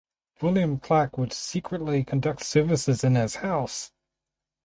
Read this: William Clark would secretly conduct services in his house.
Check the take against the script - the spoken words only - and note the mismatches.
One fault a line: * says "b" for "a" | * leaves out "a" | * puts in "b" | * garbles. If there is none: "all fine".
all fine